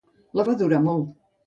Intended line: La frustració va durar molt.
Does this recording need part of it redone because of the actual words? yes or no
yes